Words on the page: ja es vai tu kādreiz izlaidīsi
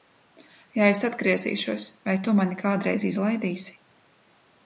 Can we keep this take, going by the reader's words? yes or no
no